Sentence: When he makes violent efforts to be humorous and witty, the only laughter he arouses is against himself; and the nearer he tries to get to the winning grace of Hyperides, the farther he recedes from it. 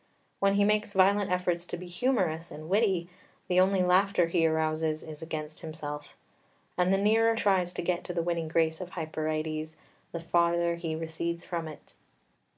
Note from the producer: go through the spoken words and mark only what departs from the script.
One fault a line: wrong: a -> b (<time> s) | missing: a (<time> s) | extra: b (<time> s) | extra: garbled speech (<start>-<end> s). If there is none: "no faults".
missing: he (7.3 s)